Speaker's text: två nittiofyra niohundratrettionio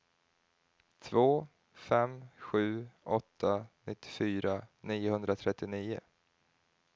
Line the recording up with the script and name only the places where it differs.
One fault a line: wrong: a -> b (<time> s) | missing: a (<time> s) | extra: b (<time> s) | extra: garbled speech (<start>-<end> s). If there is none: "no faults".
extra: fem sju åtta (1.7 s)